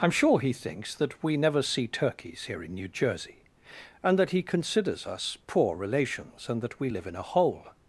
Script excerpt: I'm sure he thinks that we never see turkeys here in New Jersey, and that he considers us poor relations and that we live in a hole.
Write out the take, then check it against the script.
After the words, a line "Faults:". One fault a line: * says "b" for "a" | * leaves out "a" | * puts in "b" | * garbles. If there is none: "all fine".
I'm sure he thinks that we never see turkeys here in New Jersey, and that he considers us poor relations and that we live in a hole.
Faults:
all fine